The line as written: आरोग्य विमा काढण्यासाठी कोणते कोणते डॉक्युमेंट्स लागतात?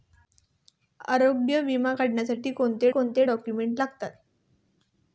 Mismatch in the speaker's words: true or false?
false